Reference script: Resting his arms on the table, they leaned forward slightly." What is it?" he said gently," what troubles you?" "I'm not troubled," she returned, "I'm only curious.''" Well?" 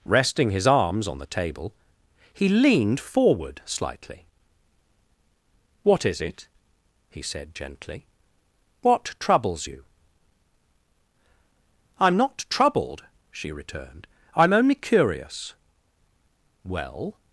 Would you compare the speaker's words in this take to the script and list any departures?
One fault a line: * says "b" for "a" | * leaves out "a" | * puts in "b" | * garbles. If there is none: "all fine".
* says "he" for "they"